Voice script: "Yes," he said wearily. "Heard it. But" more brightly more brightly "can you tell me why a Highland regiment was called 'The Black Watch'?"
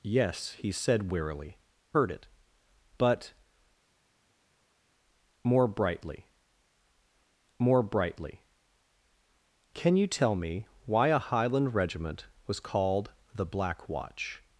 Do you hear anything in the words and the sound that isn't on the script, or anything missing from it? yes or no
no